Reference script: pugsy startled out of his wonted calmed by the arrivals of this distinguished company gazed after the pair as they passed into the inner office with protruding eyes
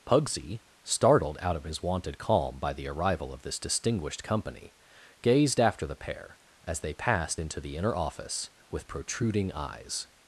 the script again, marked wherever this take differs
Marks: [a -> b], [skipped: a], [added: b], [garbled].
pugsy startled out of his wonted [calmed -> calm] by the [arrivals -> arrival] of this distinguished company gazed after the pair as they passed into the inner office with protruding eyes